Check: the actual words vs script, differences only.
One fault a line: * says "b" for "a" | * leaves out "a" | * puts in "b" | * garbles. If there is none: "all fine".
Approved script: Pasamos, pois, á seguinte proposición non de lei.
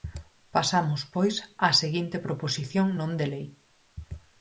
all fine